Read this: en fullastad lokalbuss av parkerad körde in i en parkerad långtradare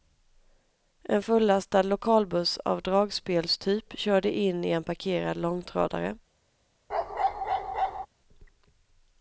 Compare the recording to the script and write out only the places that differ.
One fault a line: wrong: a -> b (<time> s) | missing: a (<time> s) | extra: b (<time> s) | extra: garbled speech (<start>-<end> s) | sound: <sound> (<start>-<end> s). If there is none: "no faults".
wrong: parkerad -> dragspelstyp (2.8 s)
sound: bark (6.9-8.1 s)